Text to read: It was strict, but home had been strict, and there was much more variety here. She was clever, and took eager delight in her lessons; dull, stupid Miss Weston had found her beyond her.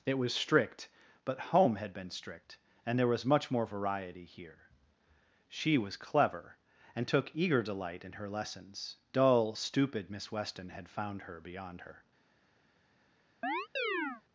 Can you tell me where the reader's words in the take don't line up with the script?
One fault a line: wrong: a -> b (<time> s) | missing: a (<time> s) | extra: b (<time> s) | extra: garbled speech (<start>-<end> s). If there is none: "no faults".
no faults